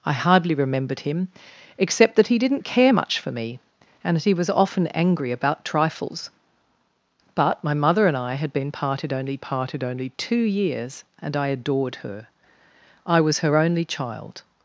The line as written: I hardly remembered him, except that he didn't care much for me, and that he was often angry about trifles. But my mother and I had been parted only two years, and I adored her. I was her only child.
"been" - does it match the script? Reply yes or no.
yes